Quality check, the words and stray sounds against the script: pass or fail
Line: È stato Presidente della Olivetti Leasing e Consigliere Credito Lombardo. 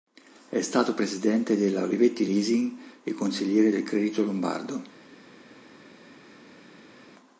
fail